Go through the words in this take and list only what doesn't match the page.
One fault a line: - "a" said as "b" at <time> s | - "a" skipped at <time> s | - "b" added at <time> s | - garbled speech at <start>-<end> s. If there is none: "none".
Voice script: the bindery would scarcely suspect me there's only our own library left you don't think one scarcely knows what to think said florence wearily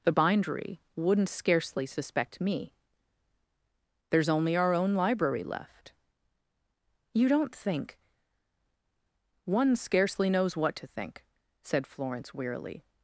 - "would" said as "wouldn't" at 1.0 s